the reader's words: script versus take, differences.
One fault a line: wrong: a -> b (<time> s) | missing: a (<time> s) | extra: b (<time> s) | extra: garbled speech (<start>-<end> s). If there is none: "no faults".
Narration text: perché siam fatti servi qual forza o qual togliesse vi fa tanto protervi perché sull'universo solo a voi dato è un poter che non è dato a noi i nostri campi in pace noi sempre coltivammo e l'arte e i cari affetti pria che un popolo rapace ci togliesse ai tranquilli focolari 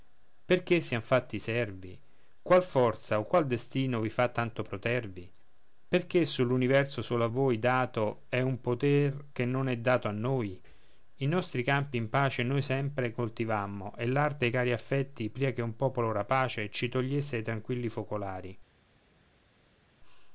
wrong: togliesse -> destino (3.5 s)